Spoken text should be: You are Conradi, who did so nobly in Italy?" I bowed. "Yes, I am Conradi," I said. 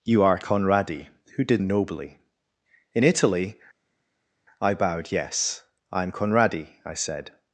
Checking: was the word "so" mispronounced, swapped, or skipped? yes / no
yes